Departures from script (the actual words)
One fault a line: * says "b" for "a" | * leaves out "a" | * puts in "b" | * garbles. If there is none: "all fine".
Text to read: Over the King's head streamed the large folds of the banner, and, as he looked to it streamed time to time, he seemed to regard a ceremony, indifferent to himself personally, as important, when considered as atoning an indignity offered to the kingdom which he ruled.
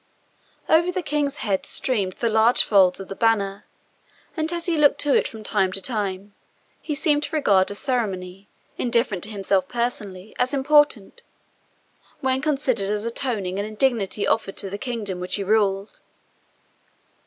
* says "from" for "streamed"